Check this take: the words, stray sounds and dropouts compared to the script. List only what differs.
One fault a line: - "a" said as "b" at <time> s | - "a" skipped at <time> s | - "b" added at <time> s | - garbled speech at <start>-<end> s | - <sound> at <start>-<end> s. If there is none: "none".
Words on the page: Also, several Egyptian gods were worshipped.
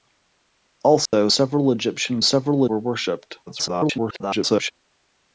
- dropout at 1.1-1.1 s
- "gods" said as "several" at 2.2 s
- garbled speech at 3.5-4.7 s